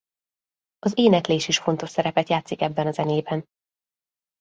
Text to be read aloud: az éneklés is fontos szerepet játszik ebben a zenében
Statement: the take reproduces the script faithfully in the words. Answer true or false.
true